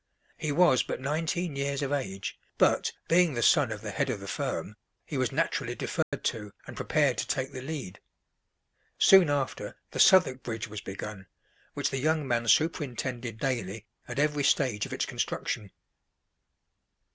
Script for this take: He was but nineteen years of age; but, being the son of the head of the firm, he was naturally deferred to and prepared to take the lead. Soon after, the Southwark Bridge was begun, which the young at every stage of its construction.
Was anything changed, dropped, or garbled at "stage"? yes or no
no